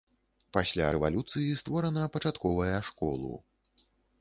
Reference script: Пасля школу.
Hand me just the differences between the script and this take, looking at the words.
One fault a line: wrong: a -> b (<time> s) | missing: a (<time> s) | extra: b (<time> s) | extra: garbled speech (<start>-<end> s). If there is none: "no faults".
extra: рэвалюцыі створана пачатковая (0.9 s)